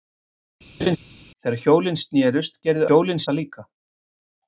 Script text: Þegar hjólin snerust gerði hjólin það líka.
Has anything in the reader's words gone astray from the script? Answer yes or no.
no